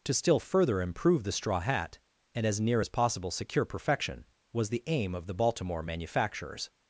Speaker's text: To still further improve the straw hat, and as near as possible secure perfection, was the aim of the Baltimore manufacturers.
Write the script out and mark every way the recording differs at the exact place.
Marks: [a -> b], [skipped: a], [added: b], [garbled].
To still further improve the straw hat, and as near as possible secure perfection, was the aim of the Baltimore manufacturers.